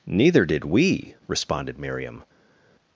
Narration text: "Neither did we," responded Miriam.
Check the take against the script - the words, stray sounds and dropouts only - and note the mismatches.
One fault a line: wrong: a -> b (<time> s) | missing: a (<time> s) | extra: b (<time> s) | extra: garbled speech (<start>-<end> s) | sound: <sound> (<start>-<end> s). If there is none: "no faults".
no faults